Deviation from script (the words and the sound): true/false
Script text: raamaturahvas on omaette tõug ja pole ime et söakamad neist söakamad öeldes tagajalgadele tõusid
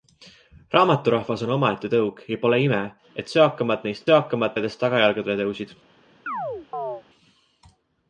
true